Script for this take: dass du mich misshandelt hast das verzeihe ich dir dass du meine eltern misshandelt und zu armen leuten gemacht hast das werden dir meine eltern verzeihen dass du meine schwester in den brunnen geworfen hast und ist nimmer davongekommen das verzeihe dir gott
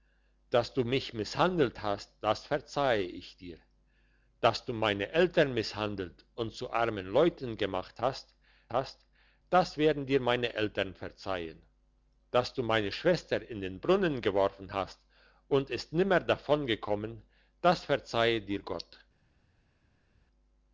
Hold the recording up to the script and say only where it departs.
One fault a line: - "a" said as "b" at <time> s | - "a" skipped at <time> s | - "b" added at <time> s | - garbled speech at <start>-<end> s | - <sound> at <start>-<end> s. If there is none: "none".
- "hast" added at 8.7 s